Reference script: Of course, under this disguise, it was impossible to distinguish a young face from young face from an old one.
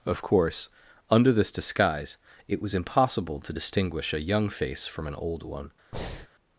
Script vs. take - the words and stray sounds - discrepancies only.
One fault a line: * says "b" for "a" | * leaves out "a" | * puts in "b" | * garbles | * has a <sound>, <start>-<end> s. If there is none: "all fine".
* leaves out "young face from"
* has a breath, 5.9-6.3 s